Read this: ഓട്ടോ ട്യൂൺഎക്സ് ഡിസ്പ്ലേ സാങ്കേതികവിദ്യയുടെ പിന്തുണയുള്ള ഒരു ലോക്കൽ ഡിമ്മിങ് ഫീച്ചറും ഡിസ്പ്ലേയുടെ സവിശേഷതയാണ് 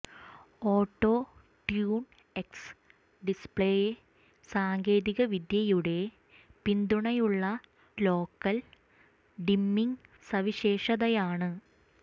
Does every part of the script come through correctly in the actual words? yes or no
no